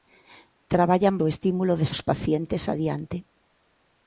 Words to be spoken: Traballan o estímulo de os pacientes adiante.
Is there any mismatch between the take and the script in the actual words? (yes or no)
no